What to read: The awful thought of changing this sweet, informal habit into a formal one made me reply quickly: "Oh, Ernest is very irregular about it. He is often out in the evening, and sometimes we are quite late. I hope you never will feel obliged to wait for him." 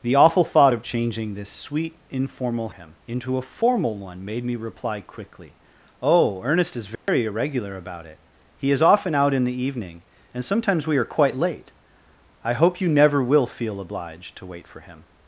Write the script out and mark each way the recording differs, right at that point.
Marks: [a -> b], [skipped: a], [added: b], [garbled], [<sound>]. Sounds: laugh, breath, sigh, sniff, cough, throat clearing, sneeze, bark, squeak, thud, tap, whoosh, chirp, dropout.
The awful thought of changing this sweet, informal [habit -> him] into a formal one made me reply quickly: "Oh, Ernest is very [dropout] irregular about it. He is often out in the evening, and sometimes we are quite late. I hope you never will feel obliged to wait for him."